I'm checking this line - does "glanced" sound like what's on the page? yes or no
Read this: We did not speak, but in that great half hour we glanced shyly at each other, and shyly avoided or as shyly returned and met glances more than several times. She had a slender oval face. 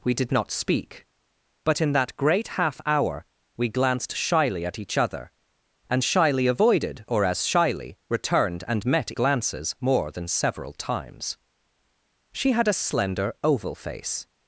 yes